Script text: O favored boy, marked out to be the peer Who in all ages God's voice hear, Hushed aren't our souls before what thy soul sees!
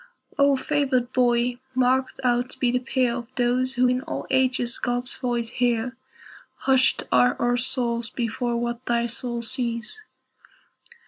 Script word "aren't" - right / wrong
wrong